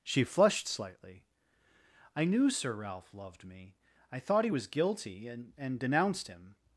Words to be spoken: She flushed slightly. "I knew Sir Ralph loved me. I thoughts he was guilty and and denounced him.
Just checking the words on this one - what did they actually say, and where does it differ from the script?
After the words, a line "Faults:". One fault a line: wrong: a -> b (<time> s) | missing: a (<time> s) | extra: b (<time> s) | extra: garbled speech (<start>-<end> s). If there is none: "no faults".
She flushed slightly. "I knew Sir Ralph loved me. I thought he was guilty and and denounced him.
Faults:
wrong: thoughts -> thought (4.2 s)